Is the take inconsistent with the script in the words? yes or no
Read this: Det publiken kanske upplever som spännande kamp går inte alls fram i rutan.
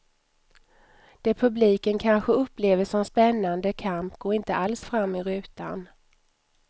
no